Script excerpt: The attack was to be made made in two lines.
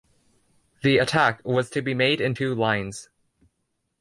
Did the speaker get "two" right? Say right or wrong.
right